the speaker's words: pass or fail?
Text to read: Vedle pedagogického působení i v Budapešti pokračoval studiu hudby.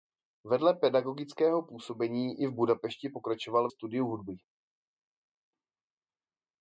pass